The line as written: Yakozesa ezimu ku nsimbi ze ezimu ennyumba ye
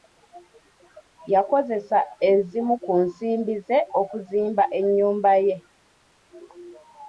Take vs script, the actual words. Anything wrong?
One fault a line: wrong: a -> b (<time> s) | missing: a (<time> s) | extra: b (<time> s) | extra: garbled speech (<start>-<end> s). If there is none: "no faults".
wrong: ezimu -> okuzimba (4.0 s)